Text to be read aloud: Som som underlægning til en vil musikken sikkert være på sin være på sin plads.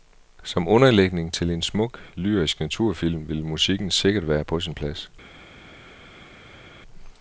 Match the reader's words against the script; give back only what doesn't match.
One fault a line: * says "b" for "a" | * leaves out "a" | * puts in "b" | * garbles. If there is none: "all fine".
* leaves out "som"
* puts in "smuk lyrisk naturfilm"
* leaves out "være på sin"